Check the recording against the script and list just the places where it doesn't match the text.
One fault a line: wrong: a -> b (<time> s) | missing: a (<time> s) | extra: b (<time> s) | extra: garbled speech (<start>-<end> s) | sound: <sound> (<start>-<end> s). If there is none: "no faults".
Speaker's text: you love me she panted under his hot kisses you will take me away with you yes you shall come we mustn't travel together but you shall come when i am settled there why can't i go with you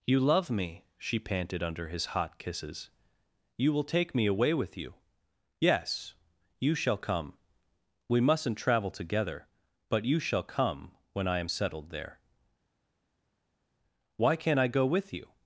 no faults